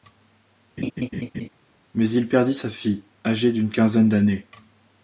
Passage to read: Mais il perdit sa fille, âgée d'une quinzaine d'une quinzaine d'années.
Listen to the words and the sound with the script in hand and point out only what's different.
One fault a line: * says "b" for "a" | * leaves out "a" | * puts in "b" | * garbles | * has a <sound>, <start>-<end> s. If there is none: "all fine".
* has a laugh, 0.8-1.5 s
* leaves out "d'une quinzaine"